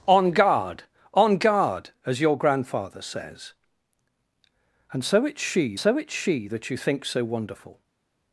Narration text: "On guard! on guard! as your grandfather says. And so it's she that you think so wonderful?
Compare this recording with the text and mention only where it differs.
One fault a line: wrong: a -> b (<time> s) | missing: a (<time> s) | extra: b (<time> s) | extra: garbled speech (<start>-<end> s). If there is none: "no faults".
extra: so it's she (5.8 s)